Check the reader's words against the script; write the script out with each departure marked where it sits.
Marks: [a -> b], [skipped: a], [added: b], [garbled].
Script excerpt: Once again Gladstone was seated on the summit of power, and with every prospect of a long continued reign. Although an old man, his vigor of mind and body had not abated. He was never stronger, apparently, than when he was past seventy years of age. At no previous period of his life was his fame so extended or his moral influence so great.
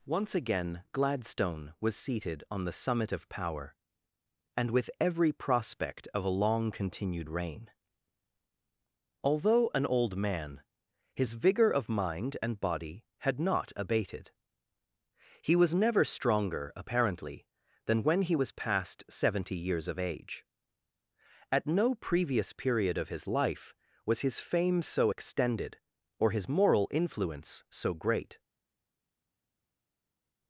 Once again Gladstone was seated on the summit of power, and with every prospect of a long continued reign. Although an old man, his vigor of mind and body had not abated. He was never stronger, apparently, than when he was past seventy years of age. At no previous period of his life was his fame so extended or his moral influence so great.